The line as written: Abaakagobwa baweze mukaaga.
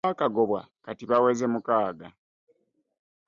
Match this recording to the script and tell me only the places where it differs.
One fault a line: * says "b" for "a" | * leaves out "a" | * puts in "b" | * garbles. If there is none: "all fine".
* puts in "kati"